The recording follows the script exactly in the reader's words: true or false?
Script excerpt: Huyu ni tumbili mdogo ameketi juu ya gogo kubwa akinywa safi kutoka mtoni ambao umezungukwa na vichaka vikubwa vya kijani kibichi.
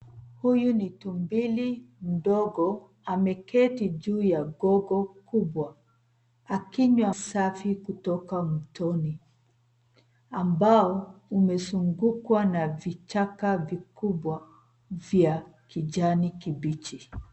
true